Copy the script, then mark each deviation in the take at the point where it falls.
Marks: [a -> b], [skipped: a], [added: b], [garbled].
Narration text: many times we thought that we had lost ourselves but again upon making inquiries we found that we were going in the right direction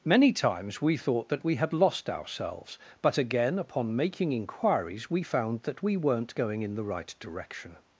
many times we thought that we had lost ourselves but again upon making inquiries we found that we [were -> weren't] going in the right direction